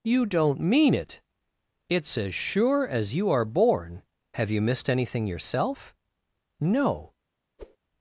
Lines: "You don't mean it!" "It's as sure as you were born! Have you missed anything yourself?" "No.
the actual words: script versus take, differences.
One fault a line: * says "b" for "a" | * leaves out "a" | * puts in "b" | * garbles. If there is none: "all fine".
* says "are" for "were"